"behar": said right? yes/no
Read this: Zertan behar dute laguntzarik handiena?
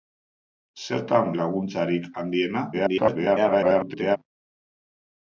no